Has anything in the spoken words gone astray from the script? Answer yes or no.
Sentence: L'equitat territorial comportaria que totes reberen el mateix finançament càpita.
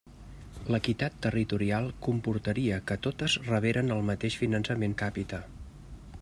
no